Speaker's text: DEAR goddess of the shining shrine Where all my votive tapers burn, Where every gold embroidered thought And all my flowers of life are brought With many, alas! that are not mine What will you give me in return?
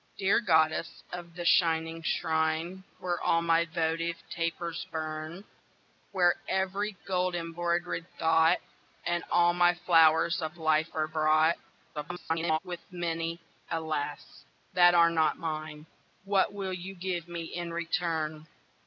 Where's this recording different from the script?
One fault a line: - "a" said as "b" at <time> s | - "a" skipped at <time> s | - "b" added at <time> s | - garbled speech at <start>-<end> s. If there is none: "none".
- garbled speech at 11.9-12.6 s